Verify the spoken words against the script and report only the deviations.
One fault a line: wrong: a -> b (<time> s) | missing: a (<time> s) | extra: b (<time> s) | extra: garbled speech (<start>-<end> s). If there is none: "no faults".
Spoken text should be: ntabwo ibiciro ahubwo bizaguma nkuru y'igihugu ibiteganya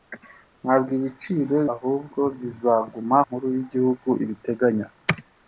no faults